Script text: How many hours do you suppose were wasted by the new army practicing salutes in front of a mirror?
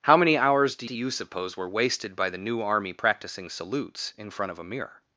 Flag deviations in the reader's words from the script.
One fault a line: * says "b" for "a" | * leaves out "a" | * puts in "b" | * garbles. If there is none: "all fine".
* puts in "do"